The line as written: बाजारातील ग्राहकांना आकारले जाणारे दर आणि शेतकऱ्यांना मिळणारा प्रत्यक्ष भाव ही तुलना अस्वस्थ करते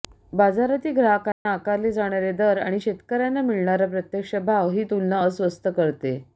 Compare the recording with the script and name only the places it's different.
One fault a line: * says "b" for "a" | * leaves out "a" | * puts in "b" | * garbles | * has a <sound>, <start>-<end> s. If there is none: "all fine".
* has a dropout, 1.3-1.5 s